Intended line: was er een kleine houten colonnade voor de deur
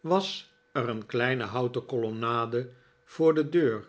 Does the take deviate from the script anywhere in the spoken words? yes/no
no